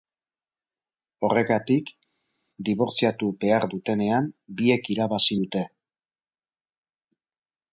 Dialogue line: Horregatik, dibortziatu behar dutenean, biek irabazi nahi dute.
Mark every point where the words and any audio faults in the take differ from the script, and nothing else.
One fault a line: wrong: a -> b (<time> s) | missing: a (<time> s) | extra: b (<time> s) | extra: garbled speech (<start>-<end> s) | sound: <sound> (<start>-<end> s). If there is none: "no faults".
missing: nahi (5.4 s)